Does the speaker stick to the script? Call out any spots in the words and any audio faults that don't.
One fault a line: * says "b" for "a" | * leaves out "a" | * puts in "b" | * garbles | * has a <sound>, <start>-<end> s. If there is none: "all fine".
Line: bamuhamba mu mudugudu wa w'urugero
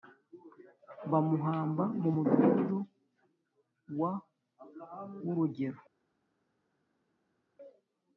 all fine